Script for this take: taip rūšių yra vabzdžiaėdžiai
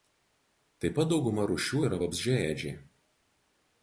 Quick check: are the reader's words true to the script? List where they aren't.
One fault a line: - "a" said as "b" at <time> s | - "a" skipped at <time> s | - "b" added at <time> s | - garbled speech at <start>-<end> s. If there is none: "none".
- "pat dauguma" added at 1.0 s